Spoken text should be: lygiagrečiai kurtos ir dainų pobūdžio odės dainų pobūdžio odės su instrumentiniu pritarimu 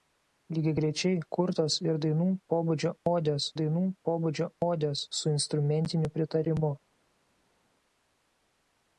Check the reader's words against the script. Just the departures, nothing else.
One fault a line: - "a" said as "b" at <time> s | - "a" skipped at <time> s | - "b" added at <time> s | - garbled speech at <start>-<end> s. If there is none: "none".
none